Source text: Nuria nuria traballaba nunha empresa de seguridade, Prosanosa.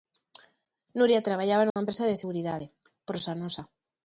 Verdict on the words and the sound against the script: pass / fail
fail